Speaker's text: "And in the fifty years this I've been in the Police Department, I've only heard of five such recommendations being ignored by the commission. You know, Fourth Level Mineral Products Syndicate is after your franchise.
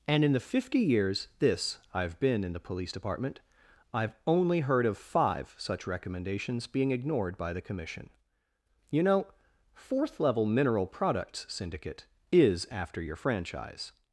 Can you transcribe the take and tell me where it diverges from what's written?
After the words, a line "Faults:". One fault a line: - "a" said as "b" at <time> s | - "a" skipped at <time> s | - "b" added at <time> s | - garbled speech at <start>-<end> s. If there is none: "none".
"And in the fifty years this I've been in the Police Department, I've only heard of five such recommendations being ignored by the commission. You know, Fourth Level Mineral Products Syndicate is after your franchise.
Faults:
none